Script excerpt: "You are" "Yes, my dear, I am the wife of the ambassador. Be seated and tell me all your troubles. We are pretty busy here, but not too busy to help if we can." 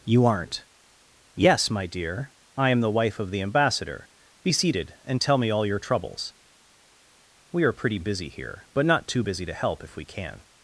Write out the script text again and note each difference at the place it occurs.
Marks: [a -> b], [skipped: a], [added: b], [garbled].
"You [are" -> aren't] "Yes, my dear, I am the wife of the ambassador. Be seated and tell me all your troubles. We are pretty busy here, but not too busy to help if we can."